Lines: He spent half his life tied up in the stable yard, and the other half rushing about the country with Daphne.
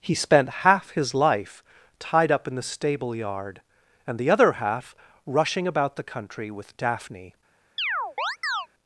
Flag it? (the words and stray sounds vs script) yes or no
yes